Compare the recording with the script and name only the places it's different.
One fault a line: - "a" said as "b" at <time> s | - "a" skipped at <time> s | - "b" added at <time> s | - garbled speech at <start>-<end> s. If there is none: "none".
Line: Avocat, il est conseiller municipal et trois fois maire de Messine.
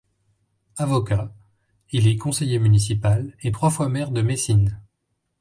none